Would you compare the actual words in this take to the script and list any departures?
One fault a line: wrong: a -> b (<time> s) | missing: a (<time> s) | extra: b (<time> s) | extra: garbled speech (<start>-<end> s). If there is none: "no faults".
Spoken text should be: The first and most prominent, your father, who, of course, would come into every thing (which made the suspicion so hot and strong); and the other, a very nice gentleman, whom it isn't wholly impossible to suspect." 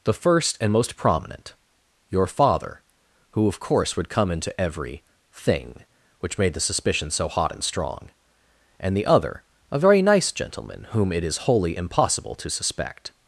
wrong: isn't -> is (11.2 s)